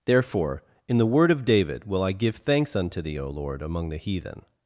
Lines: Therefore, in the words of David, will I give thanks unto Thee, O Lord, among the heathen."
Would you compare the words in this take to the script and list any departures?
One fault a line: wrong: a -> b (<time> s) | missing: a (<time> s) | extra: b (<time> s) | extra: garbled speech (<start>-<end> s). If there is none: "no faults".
wrong: words -> word (1.1 s)